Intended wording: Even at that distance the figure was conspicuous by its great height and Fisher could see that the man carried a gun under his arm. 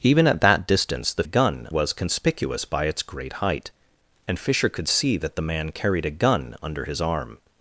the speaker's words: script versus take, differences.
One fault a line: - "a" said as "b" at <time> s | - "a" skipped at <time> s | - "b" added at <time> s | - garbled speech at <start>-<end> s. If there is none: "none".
- "figure" said as "gun" at 1.2 s